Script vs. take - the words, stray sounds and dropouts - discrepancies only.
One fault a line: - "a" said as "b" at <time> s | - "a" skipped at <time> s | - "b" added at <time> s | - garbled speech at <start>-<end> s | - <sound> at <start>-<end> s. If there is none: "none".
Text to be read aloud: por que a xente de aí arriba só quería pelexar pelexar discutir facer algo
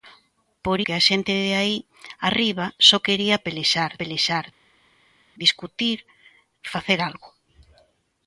none